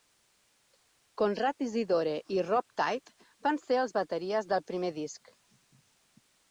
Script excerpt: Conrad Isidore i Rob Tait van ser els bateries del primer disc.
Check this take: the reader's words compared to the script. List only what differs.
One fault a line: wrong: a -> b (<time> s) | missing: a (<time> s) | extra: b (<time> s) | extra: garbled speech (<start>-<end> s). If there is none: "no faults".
no faults